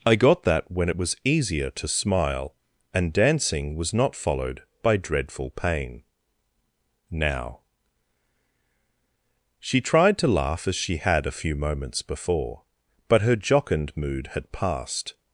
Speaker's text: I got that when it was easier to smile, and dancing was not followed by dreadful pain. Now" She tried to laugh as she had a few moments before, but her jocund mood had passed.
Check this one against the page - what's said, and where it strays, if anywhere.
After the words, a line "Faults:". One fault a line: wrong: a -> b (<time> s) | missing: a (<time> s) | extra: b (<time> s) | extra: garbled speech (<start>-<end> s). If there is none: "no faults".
I got that when it was easier to smile, and dancing was not followed by dreadful pain. Now" She tried to laugh as she had a few moments before, but her jocund mood had passed.
Faults:
no faults